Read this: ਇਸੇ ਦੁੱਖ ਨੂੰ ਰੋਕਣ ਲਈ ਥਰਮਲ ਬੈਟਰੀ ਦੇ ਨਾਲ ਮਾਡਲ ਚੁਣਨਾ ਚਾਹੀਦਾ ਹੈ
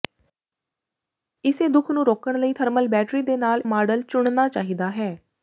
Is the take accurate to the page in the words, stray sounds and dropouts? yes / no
yes